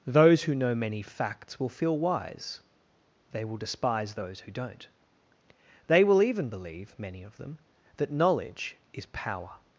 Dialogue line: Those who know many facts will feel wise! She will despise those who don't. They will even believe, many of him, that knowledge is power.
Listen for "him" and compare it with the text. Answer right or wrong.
wrong